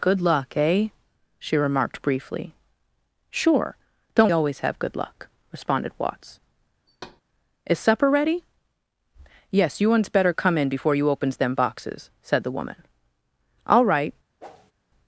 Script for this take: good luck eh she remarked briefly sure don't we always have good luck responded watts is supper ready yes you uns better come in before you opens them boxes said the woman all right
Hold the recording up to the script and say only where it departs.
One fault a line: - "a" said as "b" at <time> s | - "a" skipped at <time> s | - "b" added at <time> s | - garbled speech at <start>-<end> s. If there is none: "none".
- "we" skipped at 4.3 s